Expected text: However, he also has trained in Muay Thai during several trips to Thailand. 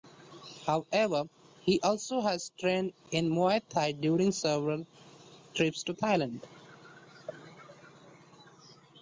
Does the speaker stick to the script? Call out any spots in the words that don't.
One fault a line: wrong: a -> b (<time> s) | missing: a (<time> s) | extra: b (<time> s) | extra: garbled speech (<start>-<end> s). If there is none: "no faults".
no faults